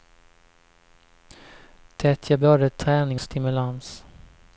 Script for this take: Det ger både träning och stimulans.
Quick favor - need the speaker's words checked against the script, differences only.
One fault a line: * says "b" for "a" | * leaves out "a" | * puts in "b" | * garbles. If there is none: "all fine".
* leaves out "och"